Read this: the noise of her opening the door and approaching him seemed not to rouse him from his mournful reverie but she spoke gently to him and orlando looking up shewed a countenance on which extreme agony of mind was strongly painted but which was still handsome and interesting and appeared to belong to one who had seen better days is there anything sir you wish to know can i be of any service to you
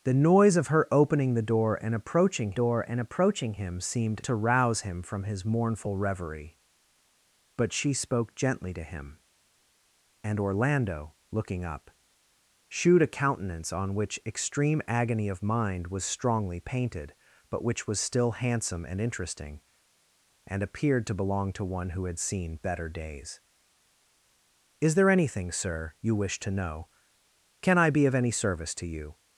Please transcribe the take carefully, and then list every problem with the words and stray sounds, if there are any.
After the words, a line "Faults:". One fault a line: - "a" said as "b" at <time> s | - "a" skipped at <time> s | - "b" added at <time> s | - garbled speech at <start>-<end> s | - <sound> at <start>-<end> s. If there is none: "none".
the noise of her opening the door and approaching door and approaching him seemed to rouse him from his mournful reverie but she spoke gently to him and orlando looking up shewed a countenance on which extreme agony of mind was strongly painted but which was still handsome and interesting and appeared to belong to one who had seen better days is there anything sir you wish to know can i be of any service to you
Faults:
- "door and approaching" added at 2.5 s
- "not" skipped at 4.2 s